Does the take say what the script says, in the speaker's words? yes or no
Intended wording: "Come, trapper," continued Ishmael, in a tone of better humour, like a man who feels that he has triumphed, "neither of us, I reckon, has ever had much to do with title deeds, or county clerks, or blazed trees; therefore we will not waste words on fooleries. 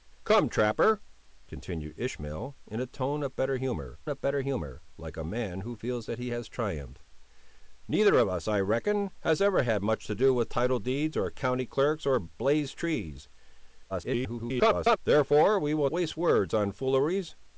no